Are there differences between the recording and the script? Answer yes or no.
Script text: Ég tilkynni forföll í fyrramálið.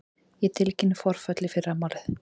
no